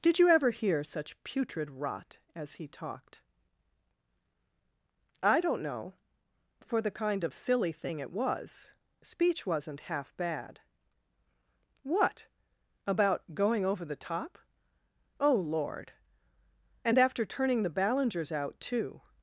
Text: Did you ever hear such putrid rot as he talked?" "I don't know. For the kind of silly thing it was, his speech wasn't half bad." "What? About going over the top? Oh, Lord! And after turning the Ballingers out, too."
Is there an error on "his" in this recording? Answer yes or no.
yes